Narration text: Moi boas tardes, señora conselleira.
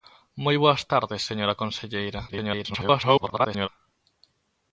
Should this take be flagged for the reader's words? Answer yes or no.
yes